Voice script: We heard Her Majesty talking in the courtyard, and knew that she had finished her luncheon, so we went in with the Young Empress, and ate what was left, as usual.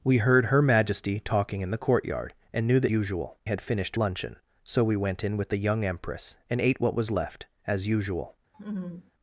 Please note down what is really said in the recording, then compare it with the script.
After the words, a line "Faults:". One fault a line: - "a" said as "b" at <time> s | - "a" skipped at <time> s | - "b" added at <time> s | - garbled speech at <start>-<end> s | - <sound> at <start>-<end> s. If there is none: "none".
We heard Her Majesty talking in the courtyard, and knew that usual had finished luncheon, so we went in with the Young Empress, and ate what was left, as usual.
Faults:
- "she" said as "usual" at 2.9 s
- "her" skipped at 4.0 s
- laugh at 8.5-9.1 s